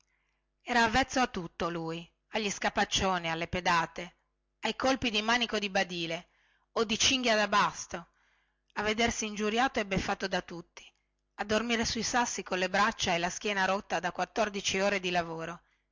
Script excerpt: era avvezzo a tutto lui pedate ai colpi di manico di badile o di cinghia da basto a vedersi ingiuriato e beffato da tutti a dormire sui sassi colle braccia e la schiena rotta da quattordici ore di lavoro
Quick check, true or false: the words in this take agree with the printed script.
false